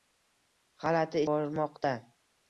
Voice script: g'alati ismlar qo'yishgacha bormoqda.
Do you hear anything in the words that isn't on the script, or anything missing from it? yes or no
yes